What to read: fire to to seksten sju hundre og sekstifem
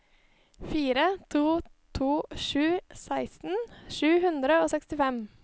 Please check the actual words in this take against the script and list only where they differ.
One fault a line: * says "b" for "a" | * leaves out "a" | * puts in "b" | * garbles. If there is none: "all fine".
* puts in "sju"